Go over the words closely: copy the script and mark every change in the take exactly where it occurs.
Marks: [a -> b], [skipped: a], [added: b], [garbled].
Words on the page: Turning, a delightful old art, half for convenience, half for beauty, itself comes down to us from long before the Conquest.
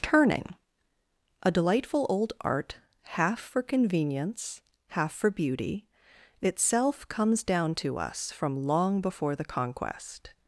Turning, a delightful old art, half for convenience, half for beauty, itself comes down to us from long before the Conquest.